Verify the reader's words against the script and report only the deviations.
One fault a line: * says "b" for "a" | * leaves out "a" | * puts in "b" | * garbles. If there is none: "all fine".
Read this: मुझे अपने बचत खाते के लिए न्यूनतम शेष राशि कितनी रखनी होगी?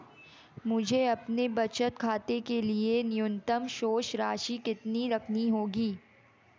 all fine